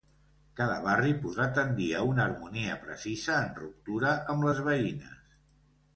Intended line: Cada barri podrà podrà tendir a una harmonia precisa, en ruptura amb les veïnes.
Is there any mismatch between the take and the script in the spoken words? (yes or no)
yes